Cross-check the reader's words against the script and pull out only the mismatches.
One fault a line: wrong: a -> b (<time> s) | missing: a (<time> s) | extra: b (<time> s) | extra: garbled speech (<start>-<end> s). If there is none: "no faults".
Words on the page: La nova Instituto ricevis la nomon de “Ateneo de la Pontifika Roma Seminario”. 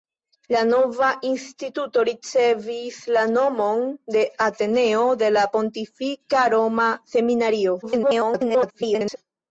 extra: garbled speech (7.8-9.2 s)